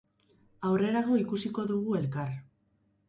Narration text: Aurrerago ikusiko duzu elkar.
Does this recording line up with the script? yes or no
no